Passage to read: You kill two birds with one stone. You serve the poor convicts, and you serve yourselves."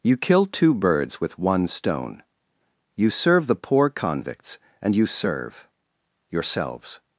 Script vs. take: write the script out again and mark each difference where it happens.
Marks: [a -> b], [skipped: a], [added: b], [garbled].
You kill two birds with one stone. You serve the poor convicts, and you serve yourselves."